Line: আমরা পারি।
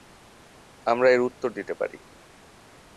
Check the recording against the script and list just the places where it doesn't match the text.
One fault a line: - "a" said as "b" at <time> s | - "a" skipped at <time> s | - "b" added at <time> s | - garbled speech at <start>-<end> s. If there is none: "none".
- "এর উত্তর দিতে" added at 1.1 s